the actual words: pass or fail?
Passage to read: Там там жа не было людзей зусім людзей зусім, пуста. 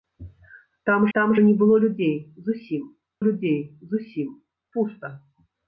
pass